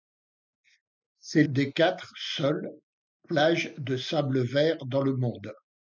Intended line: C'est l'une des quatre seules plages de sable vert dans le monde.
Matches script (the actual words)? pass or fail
fail